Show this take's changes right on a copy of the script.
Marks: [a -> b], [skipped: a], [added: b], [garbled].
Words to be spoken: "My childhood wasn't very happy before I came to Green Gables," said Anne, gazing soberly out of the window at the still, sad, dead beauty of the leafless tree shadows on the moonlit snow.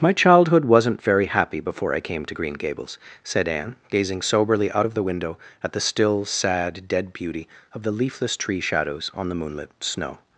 "My childhood wasn't very happy before I came to Green Gables," said Anne, gazing soberly out of the window at the still, sad, dead beauty of the leafless tree shadows on the moonlit snow.